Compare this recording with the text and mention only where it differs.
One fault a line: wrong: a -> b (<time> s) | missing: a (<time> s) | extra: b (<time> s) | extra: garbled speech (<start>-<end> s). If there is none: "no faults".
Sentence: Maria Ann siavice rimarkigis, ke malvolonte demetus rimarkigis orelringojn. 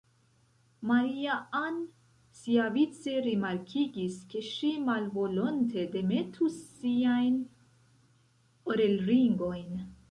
extra: ŝi (4.5 s)
wrong: rimarkigis -> siajn (6.8 s)